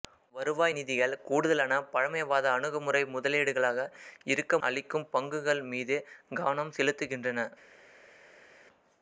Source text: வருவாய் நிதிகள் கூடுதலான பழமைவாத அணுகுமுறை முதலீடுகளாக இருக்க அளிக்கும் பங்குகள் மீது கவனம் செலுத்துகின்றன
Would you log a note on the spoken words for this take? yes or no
no